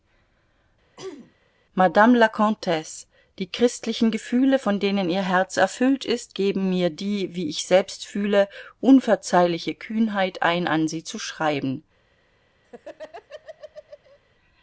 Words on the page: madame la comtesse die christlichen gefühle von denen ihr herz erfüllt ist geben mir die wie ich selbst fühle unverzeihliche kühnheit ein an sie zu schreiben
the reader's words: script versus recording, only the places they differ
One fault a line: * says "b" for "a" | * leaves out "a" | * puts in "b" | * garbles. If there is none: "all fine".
all fine